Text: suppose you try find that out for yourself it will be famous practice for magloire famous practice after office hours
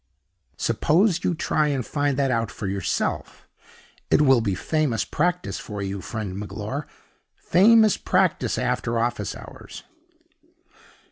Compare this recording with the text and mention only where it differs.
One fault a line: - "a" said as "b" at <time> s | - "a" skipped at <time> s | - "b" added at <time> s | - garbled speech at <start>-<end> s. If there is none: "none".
- "and" added at 1.7 s
- "you friend" added at 5.8 s